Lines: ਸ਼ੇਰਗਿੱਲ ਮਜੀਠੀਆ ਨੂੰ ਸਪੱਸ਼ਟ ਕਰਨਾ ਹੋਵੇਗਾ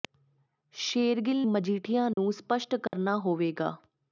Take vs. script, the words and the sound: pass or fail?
fail